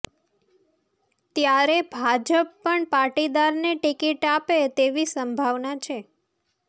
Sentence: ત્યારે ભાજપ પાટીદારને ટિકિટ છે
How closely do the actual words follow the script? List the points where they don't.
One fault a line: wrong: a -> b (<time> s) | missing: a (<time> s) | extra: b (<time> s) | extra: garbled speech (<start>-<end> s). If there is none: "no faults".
extra: પણ (2.6 s)
extra: આપે તેવી સંભાવના (4.3 s)